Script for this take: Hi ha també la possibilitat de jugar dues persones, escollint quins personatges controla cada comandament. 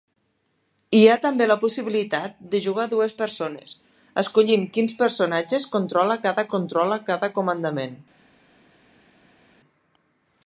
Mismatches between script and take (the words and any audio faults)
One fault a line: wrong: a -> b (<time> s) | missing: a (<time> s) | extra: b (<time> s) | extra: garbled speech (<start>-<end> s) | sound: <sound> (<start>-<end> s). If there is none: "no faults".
extra: controla cada (6.6 s)